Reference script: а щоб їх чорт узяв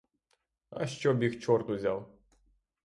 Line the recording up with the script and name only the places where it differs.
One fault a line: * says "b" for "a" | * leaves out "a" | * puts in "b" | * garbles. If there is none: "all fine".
all fine